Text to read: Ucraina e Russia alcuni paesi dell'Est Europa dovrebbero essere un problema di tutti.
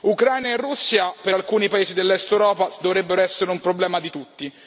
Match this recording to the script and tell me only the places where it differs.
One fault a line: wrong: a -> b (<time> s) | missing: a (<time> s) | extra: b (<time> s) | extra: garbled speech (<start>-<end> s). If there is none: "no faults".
extra: per (1.2 s)